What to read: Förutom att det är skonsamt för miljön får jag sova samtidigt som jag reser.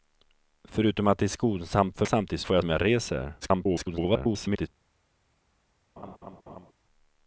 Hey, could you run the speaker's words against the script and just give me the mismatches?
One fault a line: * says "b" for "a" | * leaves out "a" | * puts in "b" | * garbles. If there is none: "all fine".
* says "samtidigt" for "miljön"
* leaves out "sova samtidigt"
* garbles